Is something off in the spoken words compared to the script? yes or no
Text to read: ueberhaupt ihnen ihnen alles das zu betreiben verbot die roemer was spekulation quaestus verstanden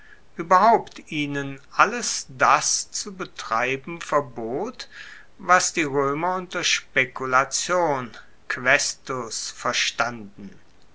yes